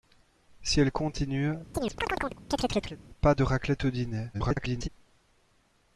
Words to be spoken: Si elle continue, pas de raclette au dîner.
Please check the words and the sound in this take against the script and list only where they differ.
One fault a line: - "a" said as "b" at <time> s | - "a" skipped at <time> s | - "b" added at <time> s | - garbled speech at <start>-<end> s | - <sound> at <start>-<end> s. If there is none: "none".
- chirp at 1.7-3.0 s
- garbled speech at 4.3-4.9 s